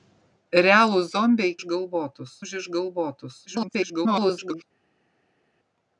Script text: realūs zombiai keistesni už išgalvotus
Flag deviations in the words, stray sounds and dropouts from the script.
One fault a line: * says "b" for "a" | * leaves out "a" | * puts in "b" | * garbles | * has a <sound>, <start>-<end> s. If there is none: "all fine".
* says "išgalvotus" for "keistesni"
* garbles